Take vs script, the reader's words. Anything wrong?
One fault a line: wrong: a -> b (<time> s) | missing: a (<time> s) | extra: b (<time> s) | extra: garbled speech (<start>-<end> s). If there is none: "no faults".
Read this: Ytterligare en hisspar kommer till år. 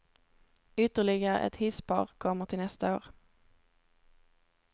wrong: en -> ett (1.4 s)
extra: nästa (2.6 s)